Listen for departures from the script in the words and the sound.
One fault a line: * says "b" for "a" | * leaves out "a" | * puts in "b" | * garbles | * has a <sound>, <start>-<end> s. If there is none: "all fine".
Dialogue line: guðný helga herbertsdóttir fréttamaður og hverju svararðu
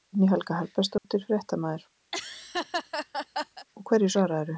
* has a dropout, 1.0-1.0 s
* has a laugh, 2.1-3.7 s